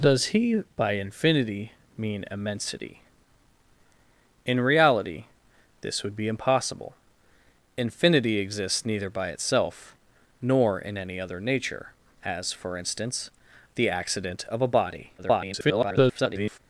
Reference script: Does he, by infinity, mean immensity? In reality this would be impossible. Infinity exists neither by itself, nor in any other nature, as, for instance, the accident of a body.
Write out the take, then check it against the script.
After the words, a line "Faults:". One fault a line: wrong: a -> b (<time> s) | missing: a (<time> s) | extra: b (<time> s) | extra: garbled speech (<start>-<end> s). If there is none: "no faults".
Does he, by infinity, mean immensity? In reality this would be impossible. Infinity exists neither by itself, nor in any other nature, as, for instance, the accident of a body. [garbled]
Faults:
extra: garbled speech (15.2-16.6 s)